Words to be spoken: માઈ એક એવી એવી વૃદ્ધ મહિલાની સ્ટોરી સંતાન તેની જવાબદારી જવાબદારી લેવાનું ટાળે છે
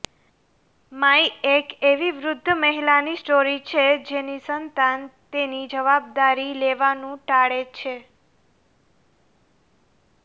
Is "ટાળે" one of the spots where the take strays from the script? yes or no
no